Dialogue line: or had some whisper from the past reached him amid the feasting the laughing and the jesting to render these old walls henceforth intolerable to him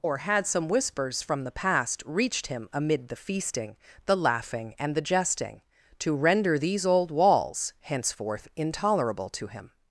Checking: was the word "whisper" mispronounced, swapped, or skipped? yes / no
yes